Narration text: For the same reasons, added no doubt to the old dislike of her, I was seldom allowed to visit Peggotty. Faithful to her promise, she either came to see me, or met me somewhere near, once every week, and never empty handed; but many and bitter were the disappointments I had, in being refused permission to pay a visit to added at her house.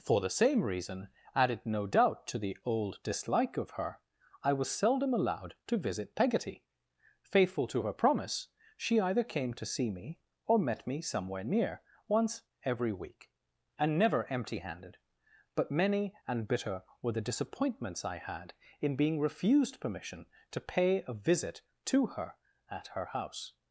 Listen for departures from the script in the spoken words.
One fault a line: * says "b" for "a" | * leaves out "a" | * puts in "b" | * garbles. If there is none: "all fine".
* says "reason" for "reasons"
* says "her" for "added"